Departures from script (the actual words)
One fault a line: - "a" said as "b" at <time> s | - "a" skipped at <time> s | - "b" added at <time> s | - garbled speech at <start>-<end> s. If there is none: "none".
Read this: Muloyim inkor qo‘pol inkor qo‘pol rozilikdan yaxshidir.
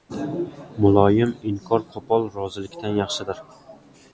- "inkor qo‘pol" skipped at 2.2 s